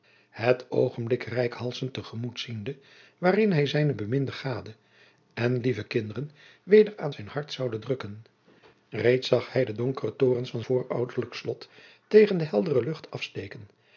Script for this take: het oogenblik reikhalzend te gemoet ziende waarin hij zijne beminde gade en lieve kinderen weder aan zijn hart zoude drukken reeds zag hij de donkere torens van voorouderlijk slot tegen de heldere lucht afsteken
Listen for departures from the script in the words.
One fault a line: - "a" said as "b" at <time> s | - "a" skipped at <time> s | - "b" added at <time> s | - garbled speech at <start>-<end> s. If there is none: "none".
none